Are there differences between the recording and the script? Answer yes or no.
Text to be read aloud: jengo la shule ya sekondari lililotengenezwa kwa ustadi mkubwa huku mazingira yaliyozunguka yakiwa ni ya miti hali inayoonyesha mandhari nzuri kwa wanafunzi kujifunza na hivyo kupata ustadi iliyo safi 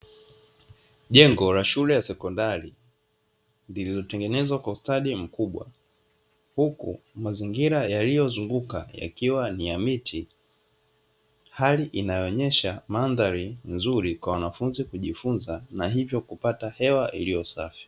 yes